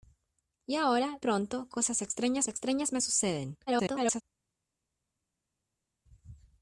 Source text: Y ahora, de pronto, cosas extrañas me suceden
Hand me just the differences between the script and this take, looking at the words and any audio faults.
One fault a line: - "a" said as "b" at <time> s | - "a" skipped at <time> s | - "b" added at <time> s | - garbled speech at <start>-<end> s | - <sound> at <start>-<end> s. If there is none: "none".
- "de" skipped at 1.2 s
- "extrañas" added at 2.5 s
- garbled speech at 3.7-4.2 s